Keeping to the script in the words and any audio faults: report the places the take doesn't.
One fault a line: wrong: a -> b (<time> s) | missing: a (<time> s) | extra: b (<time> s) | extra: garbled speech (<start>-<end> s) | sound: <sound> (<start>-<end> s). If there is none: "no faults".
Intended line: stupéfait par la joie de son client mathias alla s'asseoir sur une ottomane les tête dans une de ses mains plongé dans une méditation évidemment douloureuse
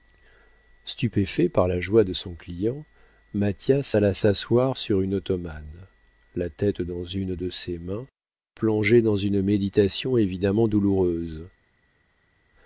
wrong: les -> la (6.4 s)